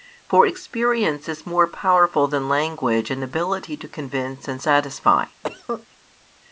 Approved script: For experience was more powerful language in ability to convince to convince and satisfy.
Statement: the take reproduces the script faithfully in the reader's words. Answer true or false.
false